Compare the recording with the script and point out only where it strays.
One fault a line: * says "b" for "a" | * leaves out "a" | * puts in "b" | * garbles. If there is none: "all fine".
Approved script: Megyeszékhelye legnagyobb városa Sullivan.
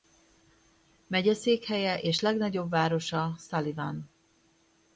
* puts in "és"